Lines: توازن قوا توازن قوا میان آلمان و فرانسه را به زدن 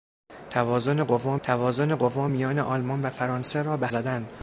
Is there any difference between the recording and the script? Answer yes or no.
no